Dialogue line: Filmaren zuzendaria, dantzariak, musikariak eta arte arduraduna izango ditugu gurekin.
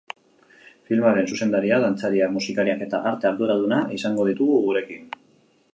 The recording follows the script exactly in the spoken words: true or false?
true